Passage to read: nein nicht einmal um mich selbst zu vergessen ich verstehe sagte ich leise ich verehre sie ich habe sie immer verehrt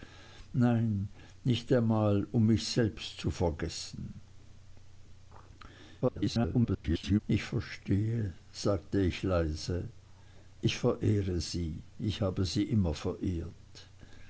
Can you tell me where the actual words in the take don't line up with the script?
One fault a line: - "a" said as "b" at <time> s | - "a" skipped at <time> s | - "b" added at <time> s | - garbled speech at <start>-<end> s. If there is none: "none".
- garbled speech at 6.0-7.2 s